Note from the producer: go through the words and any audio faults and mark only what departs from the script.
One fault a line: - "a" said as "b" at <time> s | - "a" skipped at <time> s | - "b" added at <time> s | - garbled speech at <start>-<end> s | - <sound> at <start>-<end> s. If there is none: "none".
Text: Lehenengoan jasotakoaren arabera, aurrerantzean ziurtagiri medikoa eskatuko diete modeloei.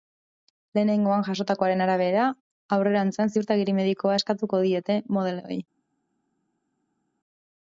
none